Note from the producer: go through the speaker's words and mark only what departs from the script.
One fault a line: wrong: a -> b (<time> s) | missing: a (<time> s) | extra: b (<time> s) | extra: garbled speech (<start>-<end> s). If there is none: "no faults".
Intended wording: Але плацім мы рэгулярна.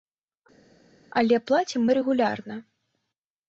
no faults